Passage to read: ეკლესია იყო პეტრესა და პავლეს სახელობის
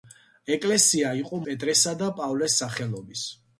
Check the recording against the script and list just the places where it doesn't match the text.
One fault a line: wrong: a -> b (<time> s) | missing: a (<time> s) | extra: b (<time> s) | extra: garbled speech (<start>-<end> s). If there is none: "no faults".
no faults